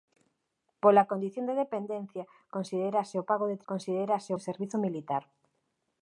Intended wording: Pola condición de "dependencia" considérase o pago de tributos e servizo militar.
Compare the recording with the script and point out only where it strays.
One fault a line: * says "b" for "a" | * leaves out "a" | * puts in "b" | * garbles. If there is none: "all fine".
* says "considérase" for "tributos"